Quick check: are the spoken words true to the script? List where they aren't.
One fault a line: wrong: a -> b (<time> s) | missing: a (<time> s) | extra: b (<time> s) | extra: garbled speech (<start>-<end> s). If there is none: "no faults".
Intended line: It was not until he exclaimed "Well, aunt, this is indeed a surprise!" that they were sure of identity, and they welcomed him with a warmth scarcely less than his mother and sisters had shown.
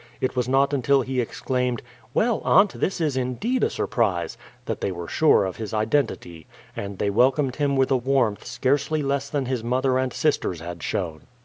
extra: his (5.6 s)